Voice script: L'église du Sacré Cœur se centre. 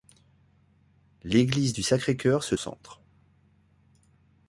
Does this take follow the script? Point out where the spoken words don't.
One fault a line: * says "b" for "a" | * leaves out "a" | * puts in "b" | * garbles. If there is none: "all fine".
all fine